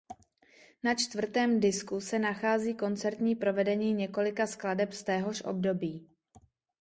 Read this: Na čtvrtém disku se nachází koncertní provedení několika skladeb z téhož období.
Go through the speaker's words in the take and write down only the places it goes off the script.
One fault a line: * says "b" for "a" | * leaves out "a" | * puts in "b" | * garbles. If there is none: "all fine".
all fine